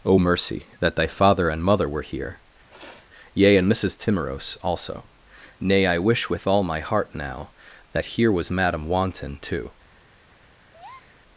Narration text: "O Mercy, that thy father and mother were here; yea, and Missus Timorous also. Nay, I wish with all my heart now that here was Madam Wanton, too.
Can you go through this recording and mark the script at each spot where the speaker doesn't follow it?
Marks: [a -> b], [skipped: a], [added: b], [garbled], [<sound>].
"O Mercy, that thy father and mother were here; [sniff] yea, and Missus Timorous also. Nay, I wish with all my heart now that here was Madam Wanton, too. [breath]